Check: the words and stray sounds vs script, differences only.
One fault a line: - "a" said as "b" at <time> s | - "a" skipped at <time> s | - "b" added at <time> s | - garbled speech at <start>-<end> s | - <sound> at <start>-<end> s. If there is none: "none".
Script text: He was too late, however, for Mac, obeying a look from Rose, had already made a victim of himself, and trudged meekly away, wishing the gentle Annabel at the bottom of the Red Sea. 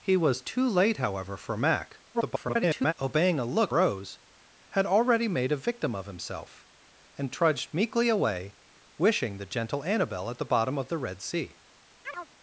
- garbled speech at 2.1-2.9 s
- "from" skipped at 3.7 s
- chirp at 12.0-12.3 s